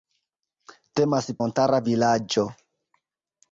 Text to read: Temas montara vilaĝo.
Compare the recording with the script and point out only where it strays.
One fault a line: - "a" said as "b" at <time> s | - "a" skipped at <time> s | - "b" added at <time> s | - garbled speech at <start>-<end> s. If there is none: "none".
none